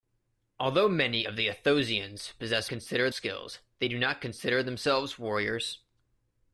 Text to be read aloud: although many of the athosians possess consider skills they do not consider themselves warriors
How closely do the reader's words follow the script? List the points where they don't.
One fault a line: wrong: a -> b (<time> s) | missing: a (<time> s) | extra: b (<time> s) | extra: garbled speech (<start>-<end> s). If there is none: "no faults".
no faults